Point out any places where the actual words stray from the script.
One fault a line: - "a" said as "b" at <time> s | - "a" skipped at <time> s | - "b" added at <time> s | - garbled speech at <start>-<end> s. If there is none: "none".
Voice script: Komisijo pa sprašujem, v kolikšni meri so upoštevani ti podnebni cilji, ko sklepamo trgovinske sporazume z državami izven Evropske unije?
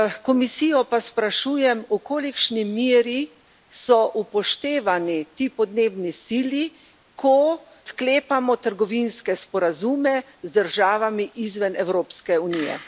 none